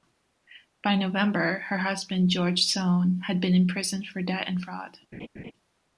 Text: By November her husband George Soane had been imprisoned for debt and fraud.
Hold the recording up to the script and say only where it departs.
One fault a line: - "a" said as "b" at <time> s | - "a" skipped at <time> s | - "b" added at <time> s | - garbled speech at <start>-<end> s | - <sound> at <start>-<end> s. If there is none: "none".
- laugh at 5.1-5.5 s